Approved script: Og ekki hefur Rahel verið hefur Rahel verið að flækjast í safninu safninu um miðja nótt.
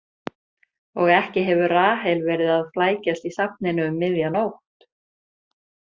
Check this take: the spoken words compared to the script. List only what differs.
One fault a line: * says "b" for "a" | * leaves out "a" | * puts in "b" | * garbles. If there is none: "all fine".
* leaves out "hefur Rahel verið"
* leaves out "safninu"